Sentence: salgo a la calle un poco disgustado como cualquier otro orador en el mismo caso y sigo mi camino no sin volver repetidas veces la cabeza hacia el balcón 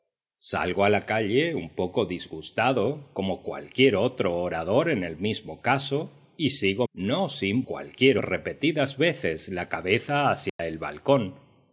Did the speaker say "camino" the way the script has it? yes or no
no